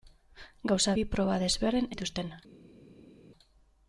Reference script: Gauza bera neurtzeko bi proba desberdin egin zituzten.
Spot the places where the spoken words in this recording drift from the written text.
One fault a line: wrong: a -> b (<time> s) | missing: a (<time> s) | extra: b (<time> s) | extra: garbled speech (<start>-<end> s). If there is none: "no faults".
missing: bera neurtzeko (0.9 s)
missing: egin (1.9 s)